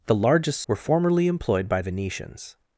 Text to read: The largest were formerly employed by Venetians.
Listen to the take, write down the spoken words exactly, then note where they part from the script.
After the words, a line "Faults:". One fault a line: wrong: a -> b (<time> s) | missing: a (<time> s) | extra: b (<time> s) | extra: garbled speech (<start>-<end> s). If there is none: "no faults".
The largest were formerly employed by Venetians.
Faults:
no faults